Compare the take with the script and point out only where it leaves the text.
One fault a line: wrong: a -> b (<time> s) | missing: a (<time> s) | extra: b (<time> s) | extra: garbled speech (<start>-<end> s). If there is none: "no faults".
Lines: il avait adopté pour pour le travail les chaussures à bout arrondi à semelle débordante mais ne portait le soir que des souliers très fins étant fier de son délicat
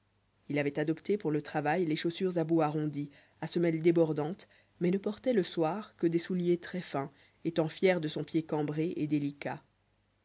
missing: pour (1.3 s)
extra: pied cambré et (8.2 s)